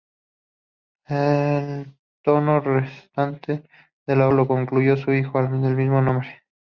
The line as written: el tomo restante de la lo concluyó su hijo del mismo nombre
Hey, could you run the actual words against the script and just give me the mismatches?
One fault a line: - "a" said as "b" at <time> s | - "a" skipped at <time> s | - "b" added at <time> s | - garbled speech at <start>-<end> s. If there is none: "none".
none